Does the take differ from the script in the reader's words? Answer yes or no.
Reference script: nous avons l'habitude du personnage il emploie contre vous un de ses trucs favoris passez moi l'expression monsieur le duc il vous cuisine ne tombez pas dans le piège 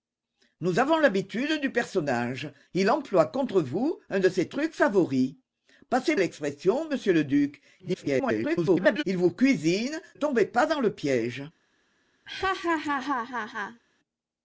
yes